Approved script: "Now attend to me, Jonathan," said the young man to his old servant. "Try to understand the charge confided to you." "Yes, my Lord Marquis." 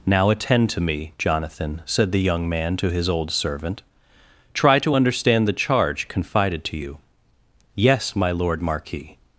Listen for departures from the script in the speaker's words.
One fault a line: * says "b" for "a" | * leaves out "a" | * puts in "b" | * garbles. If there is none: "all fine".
all fine